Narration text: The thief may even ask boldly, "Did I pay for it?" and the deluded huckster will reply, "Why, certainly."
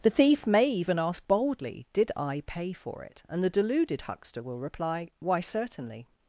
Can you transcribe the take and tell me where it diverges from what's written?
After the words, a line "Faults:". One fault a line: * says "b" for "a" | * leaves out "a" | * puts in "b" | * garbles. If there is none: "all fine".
The thief may even ask boldly, "Did I pay for it?" and the deluded huckster will reply, "Why, certainly."
Faults:
all fine